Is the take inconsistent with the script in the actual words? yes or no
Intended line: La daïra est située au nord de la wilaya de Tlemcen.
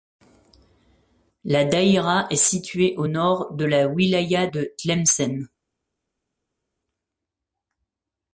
no